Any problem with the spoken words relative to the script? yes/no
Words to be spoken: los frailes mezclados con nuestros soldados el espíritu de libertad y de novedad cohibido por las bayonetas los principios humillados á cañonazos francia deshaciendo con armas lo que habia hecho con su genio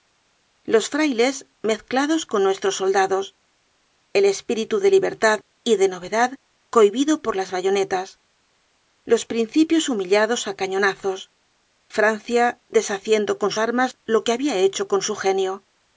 no